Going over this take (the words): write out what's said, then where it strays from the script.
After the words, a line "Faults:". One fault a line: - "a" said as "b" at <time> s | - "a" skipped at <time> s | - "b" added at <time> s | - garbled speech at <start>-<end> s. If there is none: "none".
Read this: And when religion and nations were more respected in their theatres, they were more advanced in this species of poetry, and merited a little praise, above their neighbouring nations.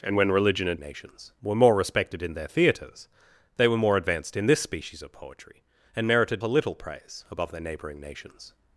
And when religion and nations were more respected in their theatres, they were more advanced in this species of poetry, and merited a little praise, above their neighbouring nations.
Faults:
none